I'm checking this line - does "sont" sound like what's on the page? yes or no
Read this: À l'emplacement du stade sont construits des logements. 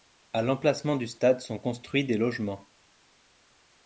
yes